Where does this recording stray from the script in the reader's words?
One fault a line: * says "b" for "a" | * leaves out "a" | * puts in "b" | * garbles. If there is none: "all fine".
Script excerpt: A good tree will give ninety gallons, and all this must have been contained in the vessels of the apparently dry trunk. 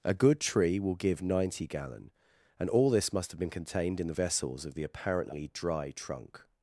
* says "gallon" for "gallons"